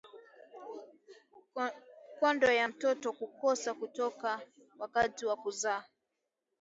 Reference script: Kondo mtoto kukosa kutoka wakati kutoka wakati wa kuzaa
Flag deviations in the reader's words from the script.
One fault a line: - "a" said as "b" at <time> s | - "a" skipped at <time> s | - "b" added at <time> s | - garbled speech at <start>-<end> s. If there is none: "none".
- "ya" added at 2.5 s
- "kutoka wakati" skipped at 5.3 s